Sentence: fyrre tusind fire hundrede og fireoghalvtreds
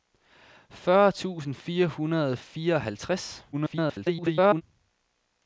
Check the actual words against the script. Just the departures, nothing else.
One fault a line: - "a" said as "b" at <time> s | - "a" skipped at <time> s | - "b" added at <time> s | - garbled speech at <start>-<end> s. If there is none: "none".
- garbled speech at 3.5-4.6 s